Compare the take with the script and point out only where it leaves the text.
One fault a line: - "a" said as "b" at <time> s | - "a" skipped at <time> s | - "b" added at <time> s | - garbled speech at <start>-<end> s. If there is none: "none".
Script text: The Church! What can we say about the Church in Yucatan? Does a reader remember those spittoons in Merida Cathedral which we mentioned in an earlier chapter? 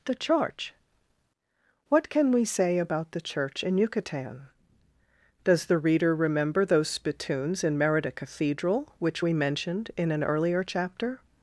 - "a" said as "the" at 5.7 s